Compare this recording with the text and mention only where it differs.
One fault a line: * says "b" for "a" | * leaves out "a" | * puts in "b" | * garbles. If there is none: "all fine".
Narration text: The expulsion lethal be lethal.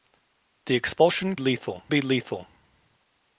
all fine